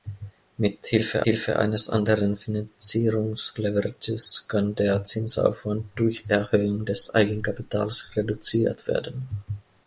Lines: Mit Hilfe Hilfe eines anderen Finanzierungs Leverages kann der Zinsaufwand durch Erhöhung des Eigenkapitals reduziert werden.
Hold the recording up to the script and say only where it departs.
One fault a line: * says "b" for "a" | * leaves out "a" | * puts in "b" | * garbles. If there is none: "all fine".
all fine